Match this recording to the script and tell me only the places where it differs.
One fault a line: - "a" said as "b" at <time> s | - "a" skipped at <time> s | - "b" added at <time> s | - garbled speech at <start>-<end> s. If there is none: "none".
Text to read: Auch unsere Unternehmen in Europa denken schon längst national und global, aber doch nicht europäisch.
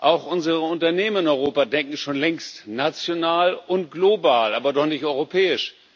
none